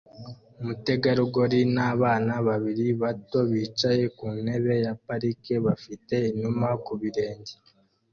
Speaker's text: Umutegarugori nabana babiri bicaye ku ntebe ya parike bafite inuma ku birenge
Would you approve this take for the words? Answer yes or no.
no